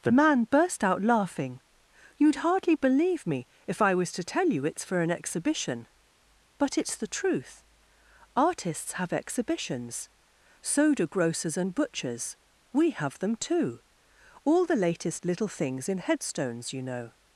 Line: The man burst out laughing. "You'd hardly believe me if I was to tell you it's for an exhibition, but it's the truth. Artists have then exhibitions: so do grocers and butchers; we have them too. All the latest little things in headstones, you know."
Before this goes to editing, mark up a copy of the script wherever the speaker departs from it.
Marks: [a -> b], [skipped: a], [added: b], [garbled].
The man burst out laughing. "You'd hardly believe me if I was to tell you it's for an exhibition, but it's the truth. Artists have [skipped: then] exhibitions: so do grocers and butchers; we have them too. All the latest little things in headstones, you know."